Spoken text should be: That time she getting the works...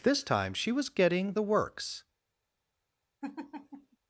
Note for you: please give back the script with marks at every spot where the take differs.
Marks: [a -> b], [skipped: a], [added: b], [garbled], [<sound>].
[That -> This] time she [added: was] getting the works... [laugh]